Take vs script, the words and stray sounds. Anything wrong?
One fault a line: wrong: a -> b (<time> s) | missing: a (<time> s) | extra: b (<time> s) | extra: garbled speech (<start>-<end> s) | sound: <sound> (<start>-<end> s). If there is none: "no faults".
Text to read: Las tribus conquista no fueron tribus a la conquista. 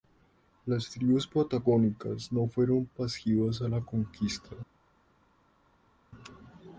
wrong: conquista -> patagónicas (1.3 s)
wrong: tribus -> pasivas (2.9 s)